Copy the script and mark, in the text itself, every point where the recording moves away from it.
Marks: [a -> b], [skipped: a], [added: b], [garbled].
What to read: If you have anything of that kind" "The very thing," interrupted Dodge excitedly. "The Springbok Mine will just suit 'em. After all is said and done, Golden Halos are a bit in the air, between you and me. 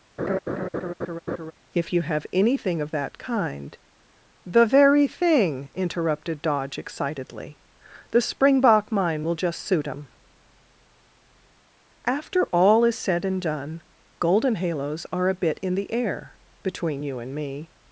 If you have anything of that kind" "The very thing," interrupted Dodge excitedly. "The Springbok Mine will just suit 'em. After all is said and done, Golden Halos are a bit in the air, between you and me.